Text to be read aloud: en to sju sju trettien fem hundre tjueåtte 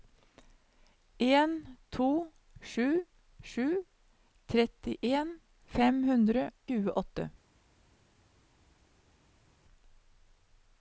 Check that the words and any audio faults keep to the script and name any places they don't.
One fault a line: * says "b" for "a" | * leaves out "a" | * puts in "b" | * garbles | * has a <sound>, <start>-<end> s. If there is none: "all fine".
all fine